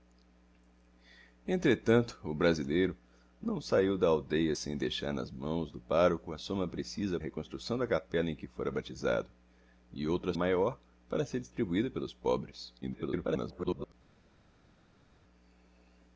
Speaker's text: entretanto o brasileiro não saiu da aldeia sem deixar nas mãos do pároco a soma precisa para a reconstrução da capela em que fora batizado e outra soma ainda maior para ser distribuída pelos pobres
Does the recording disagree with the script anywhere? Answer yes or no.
yes